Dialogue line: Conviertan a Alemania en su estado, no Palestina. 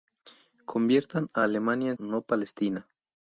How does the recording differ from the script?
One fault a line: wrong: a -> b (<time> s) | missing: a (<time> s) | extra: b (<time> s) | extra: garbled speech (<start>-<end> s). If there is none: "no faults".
missing: su estado (2.0 s)